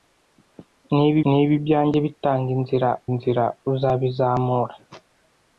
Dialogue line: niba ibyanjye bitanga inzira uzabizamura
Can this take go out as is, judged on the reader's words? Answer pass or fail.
fail